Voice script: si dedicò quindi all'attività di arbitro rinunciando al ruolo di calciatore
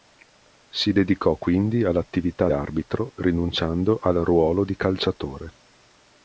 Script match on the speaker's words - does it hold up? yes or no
no